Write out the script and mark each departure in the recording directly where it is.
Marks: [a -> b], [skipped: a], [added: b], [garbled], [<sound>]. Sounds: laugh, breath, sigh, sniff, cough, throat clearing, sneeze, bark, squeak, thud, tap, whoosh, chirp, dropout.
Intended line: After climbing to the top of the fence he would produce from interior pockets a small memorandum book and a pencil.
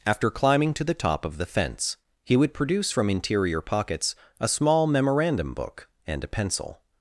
After climbing to the top of the fence he would produce from interior pockets a small memorandum book and a pencil.